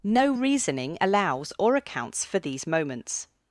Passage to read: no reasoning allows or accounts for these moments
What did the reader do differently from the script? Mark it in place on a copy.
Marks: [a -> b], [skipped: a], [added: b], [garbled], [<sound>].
no reasoning allows or accounts for these moments